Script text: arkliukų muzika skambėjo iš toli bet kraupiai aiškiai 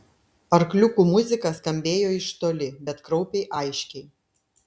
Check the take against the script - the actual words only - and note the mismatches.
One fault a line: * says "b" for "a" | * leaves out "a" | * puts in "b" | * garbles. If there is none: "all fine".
all fine